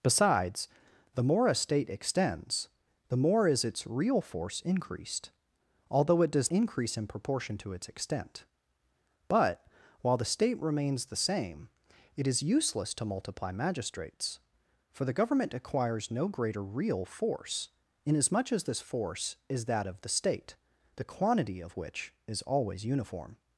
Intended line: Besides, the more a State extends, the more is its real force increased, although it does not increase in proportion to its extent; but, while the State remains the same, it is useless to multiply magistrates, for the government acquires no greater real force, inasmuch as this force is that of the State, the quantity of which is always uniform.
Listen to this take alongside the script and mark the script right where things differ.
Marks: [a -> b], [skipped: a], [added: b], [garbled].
Besides, the more a State extends, the more is its real force increased, although it does [skipped: not] increase in proportion to its extent; but, while the State remains the same, it is useless to multiply magistrates, for the government acquires no greater real force, inasmuch as this force is that of the State, the quantity of which is always uniform.